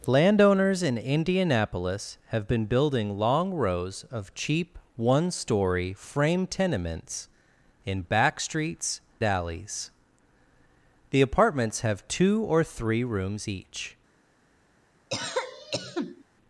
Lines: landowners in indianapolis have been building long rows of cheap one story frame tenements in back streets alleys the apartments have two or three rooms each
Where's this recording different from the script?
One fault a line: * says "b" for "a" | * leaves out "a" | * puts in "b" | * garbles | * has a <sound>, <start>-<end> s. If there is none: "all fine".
* has a cough, 15.1-16.2 s